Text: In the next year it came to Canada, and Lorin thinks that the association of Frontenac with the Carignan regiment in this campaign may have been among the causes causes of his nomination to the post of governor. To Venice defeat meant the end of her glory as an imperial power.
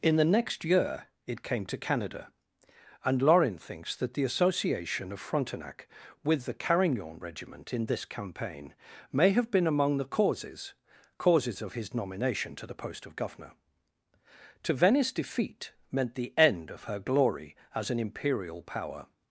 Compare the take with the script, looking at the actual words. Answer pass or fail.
pass